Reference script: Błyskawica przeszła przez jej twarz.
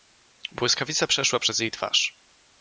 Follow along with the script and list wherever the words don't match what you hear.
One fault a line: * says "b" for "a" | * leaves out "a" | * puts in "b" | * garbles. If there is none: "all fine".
all fine